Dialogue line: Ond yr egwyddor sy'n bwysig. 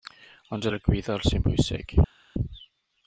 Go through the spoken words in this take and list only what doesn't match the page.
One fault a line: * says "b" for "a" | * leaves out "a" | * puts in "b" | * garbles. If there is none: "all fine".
all fine